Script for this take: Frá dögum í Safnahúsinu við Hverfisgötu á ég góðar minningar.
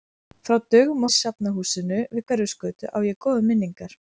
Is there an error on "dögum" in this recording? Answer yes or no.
no